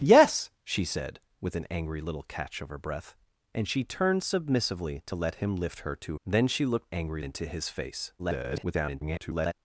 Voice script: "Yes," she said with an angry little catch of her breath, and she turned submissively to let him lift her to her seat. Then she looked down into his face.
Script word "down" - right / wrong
wrong